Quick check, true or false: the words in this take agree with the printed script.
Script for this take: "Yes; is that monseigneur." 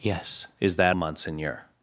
true